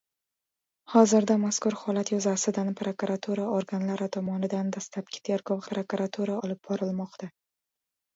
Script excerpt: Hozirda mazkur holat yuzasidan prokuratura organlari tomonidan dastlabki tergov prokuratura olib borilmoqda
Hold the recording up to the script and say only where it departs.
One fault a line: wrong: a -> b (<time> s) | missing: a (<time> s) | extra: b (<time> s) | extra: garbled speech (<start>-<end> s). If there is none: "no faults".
no faults